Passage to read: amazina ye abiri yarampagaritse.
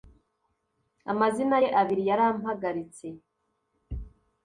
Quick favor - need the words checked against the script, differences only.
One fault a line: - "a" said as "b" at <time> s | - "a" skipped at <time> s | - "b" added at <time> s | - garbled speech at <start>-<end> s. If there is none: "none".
none